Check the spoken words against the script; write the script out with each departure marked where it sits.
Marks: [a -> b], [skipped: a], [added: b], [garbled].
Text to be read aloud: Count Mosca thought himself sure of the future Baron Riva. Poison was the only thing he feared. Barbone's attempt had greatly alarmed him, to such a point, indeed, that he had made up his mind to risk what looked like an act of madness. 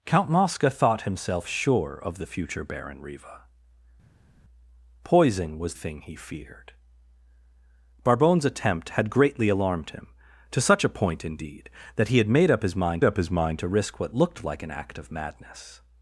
Count Mosca thought himself sure of the future Baron Riva. Poison was [skipped: the only] thing he feared. Barbone's attempt had greatly alarmed him, to such a point, indeed, that he had made up his mind [added: up his mind] to risk what looked like an act of madness.